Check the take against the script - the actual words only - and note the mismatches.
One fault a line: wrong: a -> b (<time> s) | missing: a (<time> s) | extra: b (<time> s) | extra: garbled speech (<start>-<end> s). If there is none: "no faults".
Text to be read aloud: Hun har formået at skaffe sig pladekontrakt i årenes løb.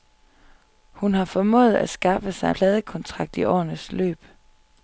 no faults